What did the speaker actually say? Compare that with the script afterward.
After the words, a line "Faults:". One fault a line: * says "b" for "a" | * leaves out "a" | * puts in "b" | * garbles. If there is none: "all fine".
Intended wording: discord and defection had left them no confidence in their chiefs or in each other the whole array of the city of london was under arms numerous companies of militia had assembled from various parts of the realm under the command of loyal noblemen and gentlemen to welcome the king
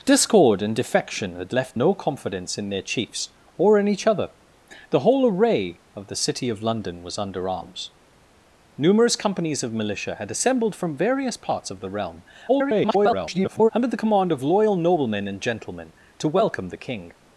discord and defection had left no confidence in their chiefs or in each other the whole array of the city of london was under arms numerous companies of militia had assembled from various parts of the realm [garbled] under the command of loyal noblemen and gentlemen to welcome the king
Faults:
* leaves out "them"
* garbles